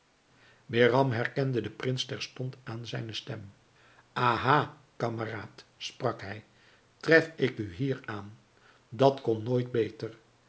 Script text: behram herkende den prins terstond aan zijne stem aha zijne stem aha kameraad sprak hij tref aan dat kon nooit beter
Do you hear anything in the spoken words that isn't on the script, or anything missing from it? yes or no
yes